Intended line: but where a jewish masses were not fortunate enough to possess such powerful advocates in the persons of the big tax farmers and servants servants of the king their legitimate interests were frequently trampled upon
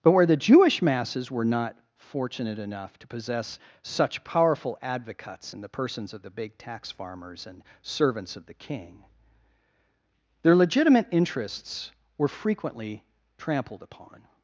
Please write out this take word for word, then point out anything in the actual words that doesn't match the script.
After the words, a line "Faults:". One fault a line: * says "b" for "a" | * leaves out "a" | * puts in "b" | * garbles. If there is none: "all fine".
but where the jewish masses were not fortunate enough to possess such powerful advocates in the persons of the big tax farmers and servants of the king their legitimate interests were frequently trampled upon
Faults:
* says "the" for "a"
* leaves out "servants"